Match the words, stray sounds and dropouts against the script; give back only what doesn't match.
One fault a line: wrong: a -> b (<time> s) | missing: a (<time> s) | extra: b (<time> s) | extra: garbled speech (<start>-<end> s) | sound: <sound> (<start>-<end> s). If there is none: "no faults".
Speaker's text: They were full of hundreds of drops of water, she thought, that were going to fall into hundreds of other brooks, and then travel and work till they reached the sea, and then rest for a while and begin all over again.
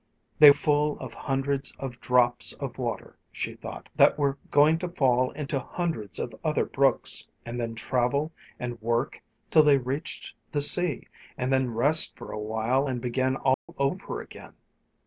missing: were (0.5 s)
sound: dropout (13.5-13.7 s)